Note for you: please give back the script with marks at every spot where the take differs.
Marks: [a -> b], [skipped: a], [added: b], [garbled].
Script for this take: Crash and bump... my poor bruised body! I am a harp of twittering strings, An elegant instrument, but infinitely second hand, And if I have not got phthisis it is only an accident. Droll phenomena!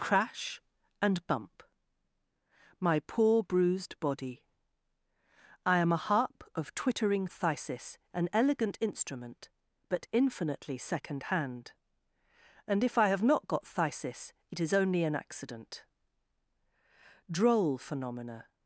Crash and bump... my poor bruised body! I am a harp of twittering [strings, -> phthisis] An elegant instrument, but infinitely second hand, And if I have not got phthisis it is only an accident. Droll phenomena!